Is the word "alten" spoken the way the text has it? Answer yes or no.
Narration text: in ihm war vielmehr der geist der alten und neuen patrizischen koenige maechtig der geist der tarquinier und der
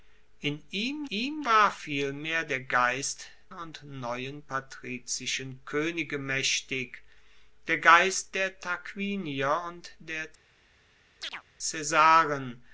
no